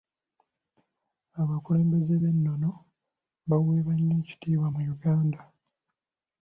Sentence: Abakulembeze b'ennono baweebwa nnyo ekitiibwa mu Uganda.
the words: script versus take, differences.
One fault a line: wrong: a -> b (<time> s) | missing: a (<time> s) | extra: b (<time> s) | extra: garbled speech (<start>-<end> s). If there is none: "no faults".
no faults